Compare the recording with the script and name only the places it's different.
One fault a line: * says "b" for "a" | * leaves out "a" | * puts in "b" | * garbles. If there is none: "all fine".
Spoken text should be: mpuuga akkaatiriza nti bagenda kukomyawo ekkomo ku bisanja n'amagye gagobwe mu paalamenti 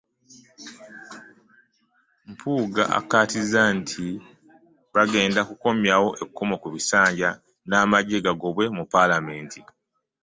all fine